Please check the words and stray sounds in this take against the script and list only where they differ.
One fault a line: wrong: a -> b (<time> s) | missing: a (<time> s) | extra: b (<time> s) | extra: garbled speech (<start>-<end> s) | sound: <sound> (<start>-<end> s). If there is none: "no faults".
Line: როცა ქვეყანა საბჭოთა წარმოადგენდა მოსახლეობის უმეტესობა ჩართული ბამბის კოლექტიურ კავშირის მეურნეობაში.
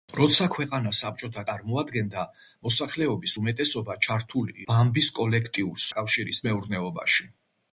no faults